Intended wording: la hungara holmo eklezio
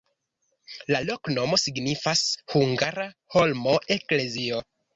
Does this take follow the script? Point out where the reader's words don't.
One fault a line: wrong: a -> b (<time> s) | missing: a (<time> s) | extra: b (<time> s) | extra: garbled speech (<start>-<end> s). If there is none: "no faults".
extra: loknomo signifas (1.1 s)